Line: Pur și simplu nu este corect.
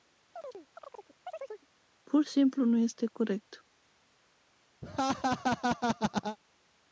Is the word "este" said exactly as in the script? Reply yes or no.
yes